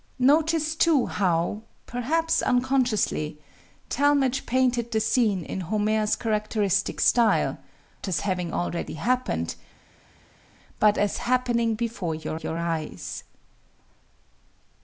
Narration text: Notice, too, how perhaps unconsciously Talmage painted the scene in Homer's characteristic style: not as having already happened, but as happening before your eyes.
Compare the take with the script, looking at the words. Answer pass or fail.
fail